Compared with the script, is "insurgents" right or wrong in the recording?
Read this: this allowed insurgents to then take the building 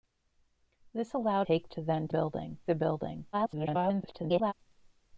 wrong